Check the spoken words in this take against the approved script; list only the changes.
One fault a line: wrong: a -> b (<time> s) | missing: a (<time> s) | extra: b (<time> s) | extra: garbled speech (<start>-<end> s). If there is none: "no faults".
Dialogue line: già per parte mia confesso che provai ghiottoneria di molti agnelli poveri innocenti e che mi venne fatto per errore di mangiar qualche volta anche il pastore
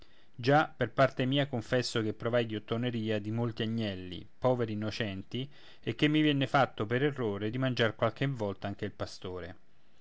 no faults